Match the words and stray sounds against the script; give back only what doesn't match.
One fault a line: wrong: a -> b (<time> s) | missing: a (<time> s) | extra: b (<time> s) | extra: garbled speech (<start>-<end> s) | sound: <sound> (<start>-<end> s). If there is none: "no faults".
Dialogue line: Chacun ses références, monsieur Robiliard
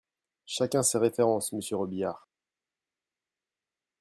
no faults